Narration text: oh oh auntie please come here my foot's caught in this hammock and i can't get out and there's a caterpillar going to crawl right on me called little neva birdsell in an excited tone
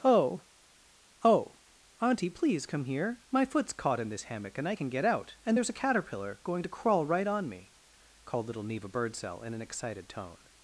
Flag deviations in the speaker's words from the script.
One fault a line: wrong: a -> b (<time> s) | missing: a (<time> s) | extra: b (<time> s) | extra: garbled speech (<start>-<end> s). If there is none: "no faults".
wrong: can't -> can (4.7 s)